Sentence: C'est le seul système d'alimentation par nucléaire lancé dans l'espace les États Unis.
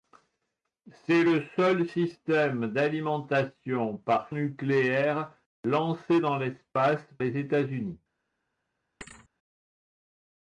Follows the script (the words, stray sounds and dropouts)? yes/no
no